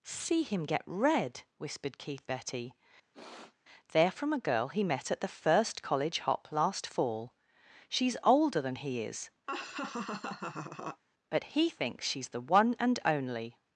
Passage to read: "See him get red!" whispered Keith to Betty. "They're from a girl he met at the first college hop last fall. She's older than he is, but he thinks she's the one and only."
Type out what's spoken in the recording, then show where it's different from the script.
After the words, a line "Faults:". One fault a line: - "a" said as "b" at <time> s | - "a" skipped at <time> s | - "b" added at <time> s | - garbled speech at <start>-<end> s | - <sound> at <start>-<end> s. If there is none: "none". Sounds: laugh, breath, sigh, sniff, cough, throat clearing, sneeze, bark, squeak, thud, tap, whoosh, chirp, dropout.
"See him get red!" whispered Keith Betty. "They're from a girl he met at the first college hop last fall. She's older than he is, but he thinks she's the one and only."
Faults:
- "to" skipped at 2.3 s
- sniff at 3.1-3.6 s
- laugh at 9.5-11.0 s